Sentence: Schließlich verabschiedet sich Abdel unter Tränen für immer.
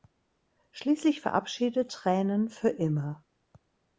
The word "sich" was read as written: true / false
false